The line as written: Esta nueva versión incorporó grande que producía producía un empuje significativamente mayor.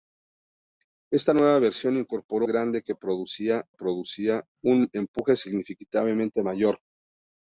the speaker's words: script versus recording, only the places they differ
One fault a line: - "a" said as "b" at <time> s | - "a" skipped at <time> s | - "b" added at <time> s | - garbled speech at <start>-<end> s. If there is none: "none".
none